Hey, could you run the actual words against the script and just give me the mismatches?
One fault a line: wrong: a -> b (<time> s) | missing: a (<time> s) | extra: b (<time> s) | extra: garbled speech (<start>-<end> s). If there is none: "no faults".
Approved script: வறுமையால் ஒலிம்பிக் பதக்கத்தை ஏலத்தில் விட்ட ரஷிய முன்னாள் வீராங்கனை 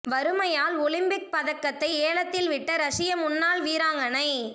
no faults